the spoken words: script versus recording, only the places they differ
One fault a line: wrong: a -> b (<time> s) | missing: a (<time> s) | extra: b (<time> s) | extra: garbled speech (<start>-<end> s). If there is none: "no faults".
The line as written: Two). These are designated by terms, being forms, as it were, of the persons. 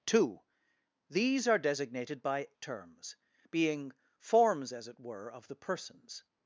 no faults